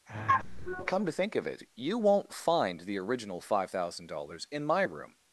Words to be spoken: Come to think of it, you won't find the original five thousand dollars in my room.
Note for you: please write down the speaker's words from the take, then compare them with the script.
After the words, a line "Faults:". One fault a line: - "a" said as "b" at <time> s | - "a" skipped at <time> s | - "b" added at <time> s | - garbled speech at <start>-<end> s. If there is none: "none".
Come to think of it, you won't find the original five thousand dollars in my room.
Faults:
none